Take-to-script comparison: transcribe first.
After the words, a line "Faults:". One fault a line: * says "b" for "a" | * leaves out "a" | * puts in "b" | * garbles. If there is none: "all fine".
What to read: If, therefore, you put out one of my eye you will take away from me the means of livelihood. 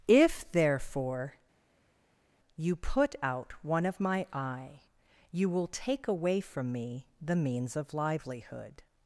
If, therefore, you put out one of my eye you will take away from me the means of livelihood.
Faults:
all fine